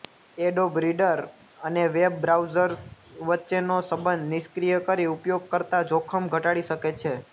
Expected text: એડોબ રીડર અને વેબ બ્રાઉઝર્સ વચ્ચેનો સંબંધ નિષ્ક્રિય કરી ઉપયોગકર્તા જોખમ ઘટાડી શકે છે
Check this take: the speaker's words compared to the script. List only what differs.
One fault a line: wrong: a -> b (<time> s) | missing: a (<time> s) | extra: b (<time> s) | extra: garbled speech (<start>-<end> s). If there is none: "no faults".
no faults